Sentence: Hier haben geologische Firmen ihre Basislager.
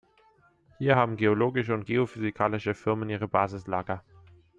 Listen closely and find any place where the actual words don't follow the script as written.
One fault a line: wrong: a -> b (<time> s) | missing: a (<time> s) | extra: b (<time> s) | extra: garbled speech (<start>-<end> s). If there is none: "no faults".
extra: und geophysikalische (1.7 s)